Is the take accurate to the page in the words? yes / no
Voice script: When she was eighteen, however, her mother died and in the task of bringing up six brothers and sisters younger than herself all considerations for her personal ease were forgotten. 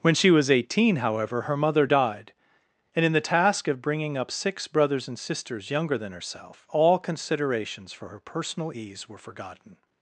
yes